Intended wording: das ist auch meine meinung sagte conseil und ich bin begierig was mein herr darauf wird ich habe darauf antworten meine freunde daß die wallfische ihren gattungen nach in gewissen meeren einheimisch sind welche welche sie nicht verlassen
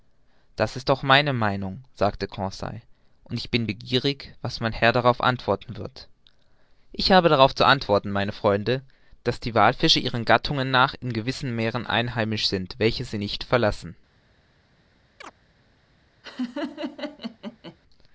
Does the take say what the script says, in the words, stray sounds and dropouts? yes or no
no